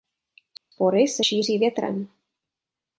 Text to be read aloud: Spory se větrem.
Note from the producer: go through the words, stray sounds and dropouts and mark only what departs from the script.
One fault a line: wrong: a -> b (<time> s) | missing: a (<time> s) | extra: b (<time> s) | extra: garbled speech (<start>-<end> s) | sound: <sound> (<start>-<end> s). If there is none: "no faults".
sound: dropout (0.6-0.7 s)
extra: šíří (1.2 s)